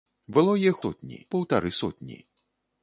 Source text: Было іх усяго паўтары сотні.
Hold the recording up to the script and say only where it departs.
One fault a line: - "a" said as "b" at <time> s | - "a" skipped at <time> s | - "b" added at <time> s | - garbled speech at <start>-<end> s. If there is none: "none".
- "усяго" said as "сотні" at 0.8 s